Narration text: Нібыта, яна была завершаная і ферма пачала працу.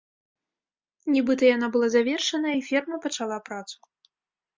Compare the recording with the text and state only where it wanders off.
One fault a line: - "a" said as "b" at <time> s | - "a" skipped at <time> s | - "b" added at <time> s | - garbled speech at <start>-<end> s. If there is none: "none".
none